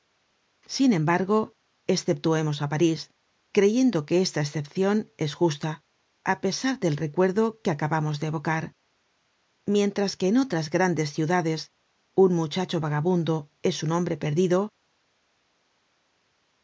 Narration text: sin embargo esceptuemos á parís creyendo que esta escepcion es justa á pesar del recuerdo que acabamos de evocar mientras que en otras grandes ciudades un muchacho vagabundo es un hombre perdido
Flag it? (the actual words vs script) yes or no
no